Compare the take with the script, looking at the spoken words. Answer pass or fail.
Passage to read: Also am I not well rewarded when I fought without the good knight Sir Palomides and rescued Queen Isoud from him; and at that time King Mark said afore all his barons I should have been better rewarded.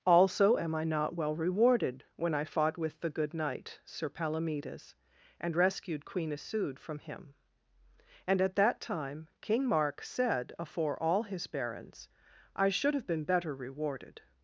fail